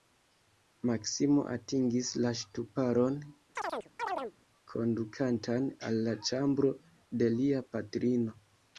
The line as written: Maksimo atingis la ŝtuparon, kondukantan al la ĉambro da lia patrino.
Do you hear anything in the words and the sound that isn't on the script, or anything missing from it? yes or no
yes